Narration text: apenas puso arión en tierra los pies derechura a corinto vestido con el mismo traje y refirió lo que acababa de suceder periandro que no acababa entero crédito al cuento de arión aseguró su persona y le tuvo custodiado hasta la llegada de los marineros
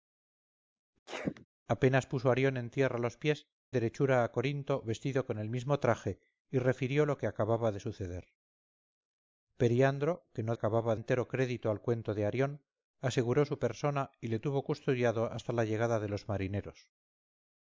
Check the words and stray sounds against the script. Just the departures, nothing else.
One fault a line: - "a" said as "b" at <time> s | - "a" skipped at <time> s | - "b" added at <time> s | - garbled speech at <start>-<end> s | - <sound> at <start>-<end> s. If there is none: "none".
- sneeze at 1.1-1.5 s